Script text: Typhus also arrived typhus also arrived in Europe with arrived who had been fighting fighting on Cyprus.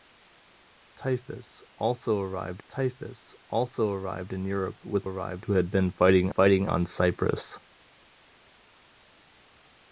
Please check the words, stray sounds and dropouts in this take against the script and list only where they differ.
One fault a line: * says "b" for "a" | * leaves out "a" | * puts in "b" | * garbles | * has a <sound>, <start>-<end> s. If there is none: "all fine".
all fine